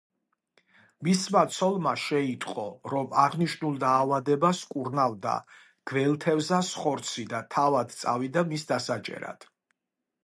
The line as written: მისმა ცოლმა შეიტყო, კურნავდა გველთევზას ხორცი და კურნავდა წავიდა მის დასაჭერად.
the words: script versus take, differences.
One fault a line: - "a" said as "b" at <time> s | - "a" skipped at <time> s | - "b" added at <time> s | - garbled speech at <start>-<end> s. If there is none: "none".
- "რომ აღნიშნულ დაავადებას" added at 2.9 s
- "კურნავდა" said as "თავად" at 7.6 s